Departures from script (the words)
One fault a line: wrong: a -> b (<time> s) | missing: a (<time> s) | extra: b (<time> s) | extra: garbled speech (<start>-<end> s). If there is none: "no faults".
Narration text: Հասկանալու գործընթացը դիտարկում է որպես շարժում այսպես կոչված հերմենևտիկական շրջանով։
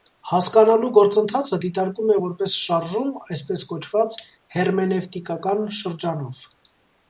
no faults